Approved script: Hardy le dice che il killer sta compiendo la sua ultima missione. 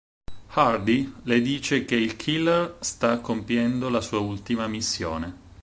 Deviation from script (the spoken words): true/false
false